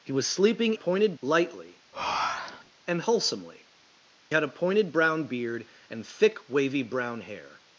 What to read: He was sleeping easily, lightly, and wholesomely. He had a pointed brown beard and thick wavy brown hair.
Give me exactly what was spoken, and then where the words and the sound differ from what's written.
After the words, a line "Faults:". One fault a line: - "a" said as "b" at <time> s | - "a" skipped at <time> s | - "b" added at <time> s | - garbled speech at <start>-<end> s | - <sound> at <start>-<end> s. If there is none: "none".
He was sleeping pointed, lightly, and wholesomely. Had a pointed brown beard and thick wavy brown hair.
Faults:
- "easily" said as "pointed" at 0.7 s
- breath at 1.9-2.7 s
- "He" skipped at 3.7 s